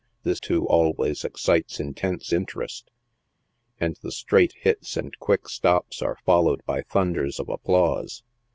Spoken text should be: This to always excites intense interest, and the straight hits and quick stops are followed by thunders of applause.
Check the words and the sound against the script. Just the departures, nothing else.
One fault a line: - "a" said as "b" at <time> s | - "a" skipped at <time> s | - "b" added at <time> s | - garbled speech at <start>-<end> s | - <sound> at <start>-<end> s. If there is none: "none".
none